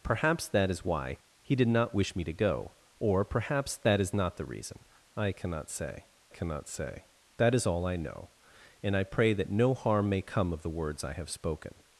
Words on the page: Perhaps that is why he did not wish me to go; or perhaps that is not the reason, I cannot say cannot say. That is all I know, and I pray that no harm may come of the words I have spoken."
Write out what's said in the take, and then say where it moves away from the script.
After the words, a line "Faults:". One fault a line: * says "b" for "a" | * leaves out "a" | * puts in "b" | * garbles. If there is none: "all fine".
Perhaps that is why he did not wish me to go; or perhaps that is not the reason, I cannot say cannot say. That is all I know, and I pray that no harm may come of the words I have spoken."
Faults:
all fine